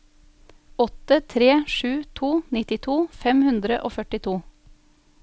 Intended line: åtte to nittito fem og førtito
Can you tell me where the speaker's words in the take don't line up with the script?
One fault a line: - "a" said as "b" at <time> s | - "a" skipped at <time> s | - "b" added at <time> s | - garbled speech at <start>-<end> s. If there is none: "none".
- "tre sju" added at 1.2 s
- "hundre" added at 3.5 s